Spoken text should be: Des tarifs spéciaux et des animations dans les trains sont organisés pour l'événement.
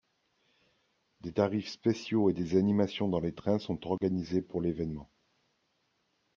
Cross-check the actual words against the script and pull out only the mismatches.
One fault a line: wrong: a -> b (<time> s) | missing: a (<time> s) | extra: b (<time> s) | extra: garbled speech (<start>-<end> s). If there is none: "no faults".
no faults